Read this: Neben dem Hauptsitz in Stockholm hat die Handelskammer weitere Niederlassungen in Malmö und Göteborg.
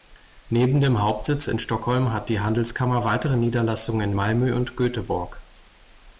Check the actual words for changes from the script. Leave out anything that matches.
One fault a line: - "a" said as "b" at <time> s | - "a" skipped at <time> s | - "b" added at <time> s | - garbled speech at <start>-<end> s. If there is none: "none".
none